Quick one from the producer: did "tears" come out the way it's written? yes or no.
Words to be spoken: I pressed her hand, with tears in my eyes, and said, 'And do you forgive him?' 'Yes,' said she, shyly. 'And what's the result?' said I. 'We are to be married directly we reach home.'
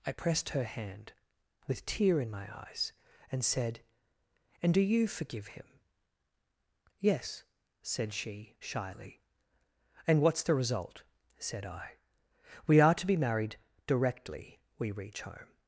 no